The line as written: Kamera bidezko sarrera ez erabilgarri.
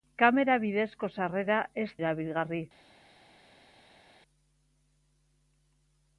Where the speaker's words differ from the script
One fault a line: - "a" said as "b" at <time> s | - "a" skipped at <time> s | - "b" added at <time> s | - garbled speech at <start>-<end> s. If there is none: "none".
none